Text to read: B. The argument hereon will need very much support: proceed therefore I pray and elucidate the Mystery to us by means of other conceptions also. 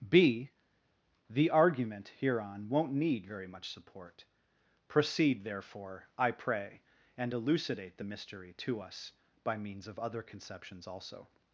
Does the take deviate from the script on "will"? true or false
true